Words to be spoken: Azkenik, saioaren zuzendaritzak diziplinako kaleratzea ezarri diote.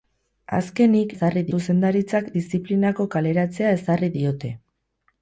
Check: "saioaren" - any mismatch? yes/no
yes